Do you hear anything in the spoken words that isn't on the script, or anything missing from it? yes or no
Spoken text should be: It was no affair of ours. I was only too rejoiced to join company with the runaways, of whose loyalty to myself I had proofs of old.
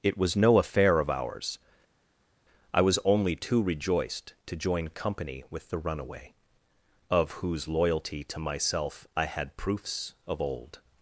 yes